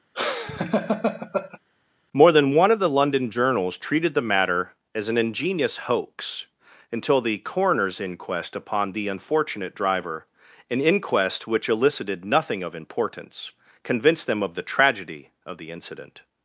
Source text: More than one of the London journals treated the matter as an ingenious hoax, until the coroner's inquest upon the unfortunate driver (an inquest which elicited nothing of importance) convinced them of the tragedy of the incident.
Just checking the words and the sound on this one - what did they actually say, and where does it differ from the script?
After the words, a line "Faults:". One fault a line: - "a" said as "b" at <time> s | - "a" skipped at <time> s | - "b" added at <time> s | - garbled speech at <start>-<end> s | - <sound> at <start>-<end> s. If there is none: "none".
More than one of the London journals treated the matter as an ingenious hoax, until the coroner's inquest upon the unfortunate driver (an inquest which elicited nothing of importance) convinced them of the tragedy of the incident.
Faults:
- laugh at 0.1-1.6 s